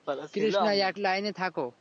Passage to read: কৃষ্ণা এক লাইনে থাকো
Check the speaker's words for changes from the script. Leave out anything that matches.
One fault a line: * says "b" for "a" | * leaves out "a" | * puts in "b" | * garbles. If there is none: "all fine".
all fine